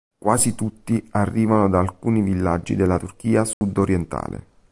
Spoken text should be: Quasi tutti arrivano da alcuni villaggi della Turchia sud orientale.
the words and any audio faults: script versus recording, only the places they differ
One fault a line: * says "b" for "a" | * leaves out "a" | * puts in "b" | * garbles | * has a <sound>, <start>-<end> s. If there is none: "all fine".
* has a dropout, 3.5-3.6 s